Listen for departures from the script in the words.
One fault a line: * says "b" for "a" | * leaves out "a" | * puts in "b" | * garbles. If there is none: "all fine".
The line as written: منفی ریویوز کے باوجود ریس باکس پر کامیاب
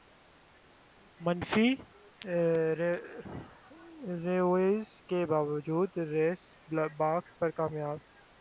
all fine